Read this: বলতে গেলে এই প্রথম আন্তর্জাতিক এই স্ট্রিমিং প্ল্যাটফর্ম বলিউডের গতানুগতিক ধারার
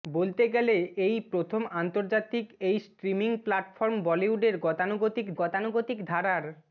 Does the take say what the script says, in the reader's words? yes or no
no